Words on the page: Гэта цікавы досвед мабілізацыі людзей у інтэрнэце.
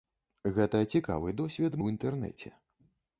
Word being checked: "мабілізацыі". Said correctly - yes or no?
no